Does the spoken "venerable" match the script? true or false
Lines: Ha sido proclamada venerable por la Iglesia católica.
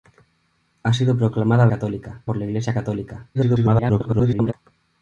false